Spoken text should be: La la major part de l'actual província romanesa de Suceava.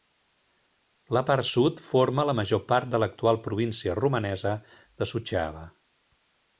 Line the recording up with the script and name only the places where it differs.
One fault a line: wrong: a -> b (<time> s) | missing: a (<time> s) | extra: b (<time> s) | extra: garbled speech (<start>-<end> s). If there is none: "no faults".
extra: part sud forma (1.3 s)